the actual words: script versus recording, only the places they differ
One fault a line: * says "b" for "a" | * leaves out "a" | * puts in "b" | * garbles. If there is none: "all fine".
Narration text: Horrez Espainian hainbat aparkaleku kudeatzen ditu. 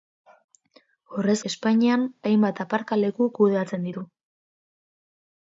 all fine